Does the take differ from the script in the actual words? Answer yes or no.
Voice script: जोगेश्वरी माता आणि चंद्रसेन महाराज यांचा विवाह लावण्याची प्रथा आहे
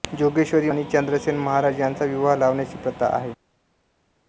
yes